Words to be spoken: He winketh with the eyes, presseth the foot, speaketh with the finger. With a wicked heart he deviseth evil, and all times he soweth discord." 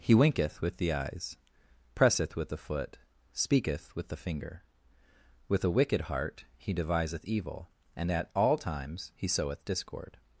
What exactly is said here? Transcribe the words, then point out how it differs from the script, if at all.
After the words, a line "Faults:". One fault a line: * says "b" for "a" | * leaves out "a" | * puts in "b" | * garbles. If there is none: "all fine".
He winketh with the eyes, presseth with the foot, speaketh with the finger. With a wicked heart he deviseth evil, and at all times he soweth discord."
Faults:
* puts in "with"
* puts in "at"